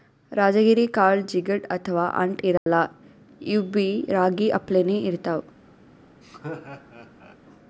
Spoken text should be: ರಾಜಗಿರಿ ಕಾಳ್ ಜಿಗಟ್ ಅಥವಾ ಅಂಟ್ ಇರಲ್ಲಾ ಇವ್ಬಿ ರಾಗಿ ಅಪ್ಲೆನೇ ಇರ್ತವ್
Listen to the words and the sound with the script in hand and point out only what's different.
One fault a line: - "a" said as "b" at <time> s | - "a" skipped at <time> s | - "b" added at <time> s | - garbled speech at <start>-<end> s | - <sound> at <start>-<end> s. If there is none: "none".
- dropout at 2.6-2.7 s
- laugh at 6.2-7.4 s